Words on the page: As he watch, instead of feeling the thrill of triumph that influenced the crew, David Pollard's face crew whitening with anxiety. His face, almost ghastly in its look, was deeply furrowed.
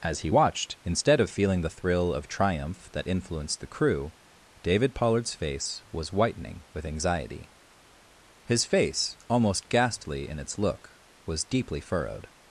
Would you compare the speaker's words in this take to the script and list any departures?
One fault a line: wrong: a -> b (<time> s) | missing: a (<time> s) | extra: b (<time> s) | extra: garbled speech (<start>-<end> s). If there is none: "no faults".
wrong: watch -> watched (0.3 s)
wrong: crew -> was (5.9 s)